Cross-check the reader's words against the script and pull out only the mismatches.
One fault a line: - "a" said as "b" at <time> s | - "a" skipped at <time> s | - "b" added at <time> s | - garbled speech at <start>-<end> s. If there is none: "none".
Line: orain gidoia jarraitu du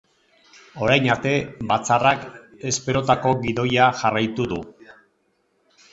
- "arte batzarrak esperotako" added at 1.1 s